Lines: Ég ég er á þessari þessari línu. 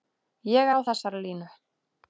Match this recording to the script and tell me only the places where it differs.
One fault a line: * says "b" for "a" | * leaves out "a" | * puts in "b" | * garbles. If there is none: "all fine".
* leaves out "ég"
* leaves out "þessari"